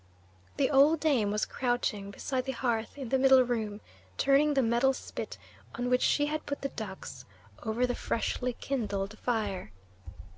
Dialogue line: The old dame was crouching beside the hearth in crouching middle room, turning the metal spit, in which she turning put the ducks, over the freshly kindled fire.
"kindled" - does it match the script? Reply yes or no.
yes